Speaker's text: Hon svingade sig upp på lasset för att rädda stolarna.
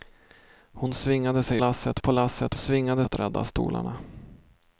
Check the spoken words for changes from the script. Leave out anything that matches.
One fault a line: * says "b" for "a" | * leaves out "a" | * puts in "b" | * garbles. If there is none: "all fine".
* says "lasset" for "upp"
* says "svingade" for "för"